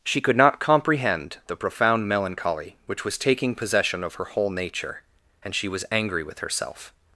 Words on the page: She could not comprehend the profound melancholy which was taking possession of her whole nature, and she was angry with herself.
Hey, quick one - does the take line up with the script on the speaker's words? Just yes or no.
yes